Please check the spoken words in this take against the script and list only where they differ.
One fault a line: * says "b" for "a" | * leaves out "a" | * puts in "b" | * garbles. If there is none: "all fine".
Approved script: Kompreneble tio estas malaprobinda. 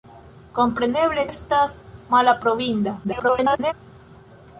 * leaves out "tio"
* garbles